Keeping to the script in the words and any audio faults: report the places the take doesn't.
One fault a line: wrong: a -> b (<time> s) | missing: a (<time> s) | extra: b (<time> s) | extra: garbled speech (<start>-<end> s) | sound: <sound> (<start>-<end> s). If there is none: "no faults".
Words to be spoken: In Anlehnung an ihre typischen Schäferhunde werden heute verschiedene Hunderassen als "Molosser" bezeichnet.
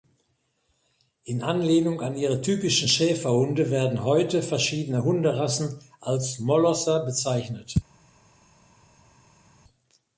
no faults